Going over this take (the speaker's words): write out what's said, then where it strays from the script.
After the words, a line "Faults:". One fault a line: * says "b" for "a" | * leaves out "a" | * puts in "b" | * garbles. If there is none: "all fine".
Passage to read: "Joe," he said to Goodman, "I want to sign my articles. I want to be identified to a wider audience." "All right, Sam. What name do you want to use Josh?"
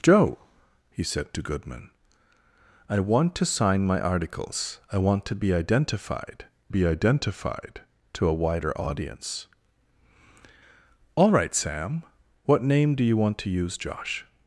"Joe," he said to Goodman, "I want to sign my articles. I want to be identified be identified to a wider audience." "All right, Sam. What name do you want to use Josh?"
Faults:
* puts in "be identified"